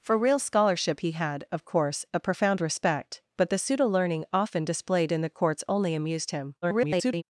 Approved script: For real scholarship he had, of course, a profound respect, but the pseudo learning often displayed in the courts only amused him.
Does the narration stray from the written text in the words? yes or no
yes